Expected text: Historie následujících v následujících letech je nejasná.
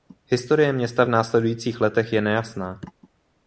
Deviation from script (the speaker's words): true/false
true